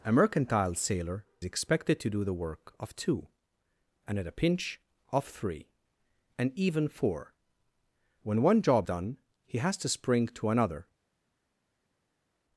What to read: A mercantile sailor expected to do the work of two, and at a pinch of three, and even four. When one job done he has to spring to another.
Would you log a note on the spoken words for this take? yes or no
no